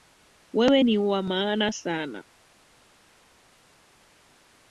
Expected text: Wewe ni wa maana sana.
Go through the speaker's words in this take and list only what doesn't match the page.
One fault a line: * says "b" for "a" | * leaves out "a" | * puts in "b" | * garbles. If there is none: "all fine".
all fine